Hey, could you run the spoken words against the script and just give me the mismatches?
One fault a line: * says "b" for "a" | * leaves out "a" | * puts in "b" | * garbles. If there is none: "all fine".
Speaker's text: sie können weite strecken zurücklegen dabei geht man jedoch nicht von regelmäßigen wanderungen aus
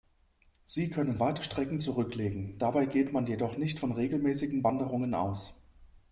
all fine